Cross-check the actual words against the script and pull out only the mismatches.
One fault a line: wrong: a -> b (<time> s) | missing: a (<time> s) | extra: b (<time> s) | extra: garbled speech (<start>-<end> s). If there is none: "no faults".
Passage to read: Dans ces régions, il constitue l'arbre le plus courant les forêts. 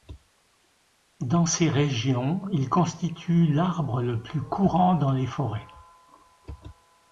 extra: dans (4.9 s)